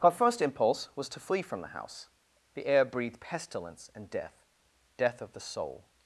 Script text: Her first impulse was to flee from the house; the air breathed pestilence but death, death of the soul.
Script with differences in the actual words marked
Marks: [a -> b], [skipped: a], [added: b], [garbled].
Her first impulse was to flee from the house; the air breathed pestilence [but -> and] death, death of the soul.